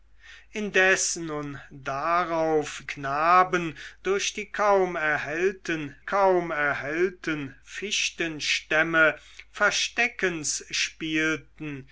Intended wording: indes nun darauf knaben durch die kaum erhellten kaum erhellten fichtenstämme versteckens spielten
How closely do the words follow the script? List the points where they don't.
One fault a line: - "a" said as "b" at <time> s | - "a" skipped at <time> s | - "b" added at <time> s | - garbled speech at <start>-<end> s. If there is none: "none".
none